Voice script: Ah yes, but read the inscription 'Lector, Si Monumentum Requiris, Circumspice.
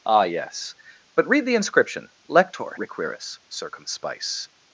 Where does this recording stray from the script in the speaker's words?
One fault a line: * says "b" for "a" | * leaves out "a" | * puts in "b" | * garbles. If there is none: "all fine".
* leaves out "Si Monumentum"